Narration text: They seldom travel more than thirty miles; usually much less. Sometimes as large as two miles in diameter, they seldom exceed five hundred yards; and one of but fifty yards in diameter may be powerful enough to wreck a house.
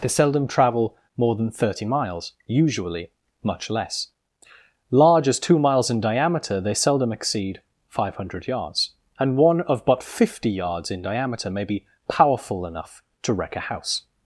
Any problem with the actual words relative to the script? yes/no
yes